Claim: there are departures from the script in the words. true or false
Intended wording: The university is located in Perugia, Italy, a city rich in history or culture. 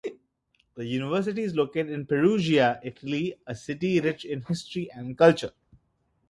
true